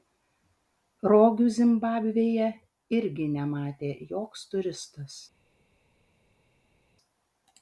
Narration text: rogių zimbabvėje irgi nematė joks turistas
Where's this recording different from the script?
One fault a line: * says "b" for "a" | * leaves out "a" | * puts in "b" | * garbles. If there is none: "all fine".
all fine